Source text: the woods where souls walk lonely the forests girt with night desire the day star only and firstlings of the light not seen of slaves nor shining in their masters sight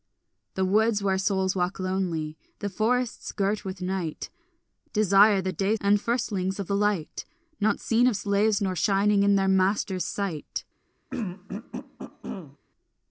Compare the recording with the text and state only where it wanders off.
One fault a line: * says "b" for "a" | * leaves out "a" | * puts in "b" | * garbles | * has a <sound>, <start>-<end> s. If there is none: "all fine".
* leaves out "star only"
* has a throat clearing, 11.1-12.6 s